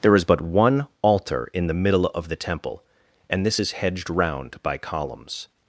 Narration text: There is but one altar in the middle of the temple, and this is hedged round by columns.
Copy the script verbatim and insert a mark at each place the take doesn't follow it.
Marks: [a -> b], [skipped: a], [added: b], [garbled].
There is but one altar in the middle of the temple, and this is hedged round by columns.